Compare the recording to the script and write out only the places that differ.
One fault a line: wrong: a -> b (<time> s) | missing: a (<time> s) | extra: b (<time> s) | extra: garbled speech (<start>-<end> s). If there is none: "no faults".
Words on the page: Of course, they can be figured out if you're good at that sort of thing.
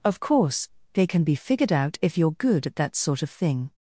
no faults